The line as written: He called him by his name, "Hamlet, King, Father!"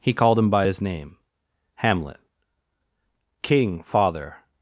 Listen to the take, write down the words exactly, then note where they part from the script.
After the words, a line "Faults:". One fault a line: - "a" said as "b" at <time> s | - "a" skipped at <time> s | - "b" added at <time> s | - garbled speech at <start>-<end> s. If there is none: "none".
He called him by his name, "Hamlet, King, Father!"
Faults:
none